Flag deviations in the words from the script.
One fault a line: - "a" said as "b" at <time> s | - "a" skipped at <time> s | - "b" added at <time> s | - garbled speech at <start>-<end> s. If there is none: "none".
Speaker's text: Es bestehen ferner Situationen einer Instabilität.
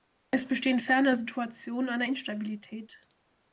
none